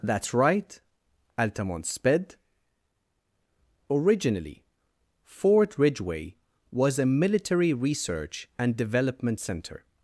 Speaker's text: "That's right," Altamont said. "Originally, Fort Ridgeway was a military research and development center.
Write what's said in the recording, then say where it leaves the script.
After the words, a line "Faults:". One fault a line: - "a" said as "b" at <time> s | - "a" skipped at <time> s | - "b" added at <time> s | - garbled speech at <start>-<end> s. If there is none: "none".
"That's right," Altamont sped. "Originally, Fort Ridgeway was a military research and development center.
Faults:
- "said" said as "sped" at 1.9 s